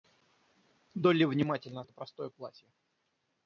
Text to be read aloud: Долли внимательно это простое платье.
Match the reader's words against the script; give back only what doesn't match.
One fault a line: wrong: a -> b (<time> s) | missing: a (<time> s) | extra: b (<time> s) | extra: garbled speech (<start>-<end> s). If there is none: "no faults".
no faults